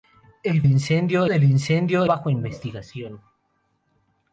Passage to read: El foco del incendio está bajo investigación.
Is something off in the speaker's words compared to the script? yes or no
yes